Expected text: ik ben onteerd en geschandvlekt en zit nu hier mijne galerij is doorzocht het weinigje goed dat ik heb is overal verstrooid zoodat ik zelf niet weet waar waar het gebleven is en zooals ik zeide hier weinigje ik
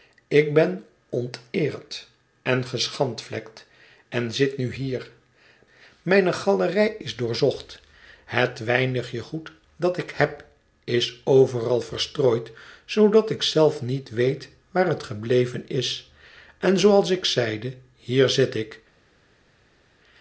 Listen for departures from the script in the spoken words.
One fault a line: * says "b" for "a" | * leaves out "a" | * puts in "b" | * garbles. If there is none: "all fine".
* leaves out "waar"
* says "zit" for "weinigje"